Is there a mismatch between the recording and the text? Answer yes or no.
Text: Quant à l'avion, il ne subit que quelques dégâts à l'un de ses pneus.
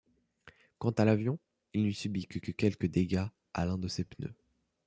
yes